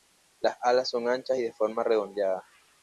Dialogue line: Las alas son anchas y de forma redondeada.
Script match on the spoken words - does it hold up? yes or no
yes